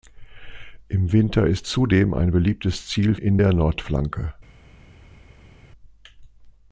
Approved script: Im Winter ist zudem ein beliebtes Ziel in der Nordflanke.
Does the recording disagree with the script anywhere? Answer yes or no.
no